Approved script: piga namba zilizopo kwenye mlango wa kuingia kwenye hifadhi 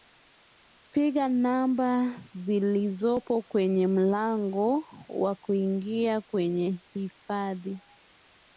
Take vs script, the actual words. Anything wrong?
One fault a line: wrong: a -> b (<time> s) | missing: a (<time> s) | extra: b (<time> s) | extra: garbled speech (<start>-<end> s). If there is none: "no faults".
no faults